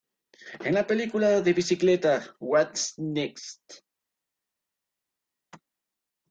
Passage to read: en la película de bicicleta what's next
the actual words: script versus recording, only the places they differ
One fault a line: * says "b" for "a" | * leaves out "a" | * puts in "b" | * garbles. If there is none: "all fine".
all fine